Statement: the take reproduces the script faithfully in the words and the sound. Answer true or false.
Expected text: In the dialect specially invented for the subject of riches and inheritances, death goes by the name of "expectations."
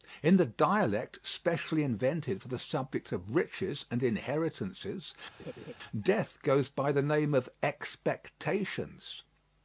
false